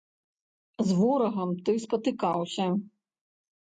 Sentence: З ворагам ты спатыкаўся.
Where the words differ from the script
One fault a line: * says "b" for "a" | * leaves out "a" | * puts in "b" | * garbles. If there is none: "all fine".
all fine